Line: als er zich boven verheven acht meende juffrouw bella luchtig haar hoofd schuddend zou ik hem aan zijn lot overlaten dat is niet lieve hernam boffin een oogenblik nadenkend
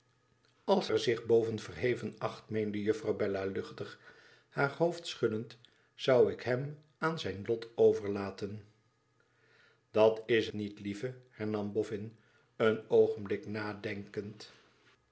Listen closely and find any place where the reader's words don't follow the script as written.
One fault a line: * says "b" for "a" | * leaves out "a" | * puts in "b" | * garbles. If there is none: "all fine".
all fine